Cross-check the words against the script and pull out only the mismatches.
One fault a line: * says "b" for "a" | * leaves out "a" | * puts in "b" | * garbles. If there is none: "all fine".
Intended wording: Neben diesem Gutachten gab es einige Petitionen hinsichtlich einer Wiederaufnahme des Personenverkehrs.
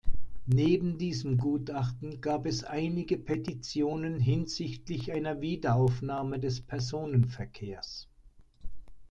all fine